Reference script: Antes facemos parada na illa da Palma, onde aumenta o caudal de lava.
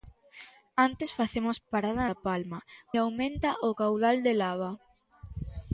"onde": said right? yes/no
no